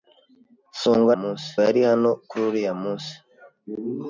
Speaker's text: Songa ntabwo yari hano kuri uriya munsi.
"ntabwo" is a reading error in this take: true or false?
true